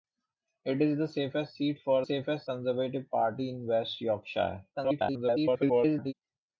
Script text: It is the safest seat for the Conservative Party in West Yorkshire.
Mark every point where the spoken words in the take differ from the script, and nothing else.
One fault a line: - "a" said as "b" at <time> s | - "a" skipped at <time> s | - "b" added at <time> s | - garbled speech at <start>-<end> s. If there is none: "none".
- "the" said as "safest" at 2.0 s
- garbled speech at 4.7-6.1 s